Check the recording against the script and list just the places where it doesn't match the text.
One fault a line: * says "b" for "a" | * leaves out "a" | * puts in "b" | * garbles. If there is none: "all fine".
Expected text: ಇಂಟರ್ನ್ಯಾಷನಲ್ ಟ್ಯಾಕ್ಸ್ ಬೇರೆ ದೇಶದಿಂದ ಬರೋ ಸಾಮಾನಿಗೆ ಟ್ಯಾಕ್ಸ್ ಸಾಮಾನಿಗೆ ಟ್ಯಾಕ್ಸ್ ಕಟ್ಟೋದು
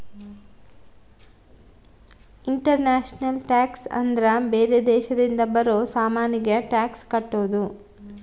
* puts in "ಅಂದ್ರ"
* leaves out "ಸಾಮಾನಿಗೆ ಟ್ಯಾಕ್ಸ್"